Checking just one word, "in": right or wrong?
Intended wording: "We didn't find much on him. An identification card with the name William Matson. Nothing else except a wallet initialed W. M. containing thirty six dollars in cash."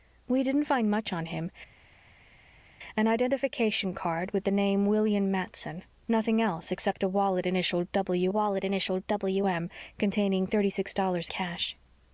wrong